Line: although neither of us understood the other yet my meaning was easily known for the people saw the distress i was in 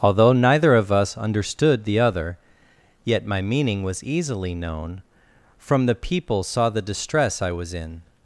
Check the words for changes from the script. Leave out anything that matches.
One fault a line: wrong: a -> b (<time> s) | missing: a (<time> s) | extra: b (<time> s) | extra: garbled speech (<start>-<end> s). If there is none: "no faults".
wrong: for -> from (5.6 s)